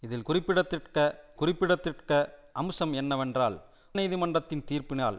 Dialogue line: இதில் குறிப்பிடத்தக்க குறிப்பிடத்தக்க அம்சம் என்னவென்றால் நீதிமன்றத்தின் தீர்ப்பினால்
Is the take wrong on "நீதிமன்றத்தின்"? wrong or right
right